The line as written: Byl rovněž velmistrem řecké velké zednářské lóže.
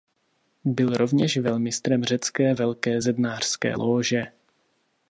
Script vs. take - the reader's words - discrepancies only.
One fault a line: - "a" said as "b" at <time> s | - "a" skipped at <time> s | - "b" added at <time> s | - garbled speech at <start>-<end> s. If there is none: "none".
none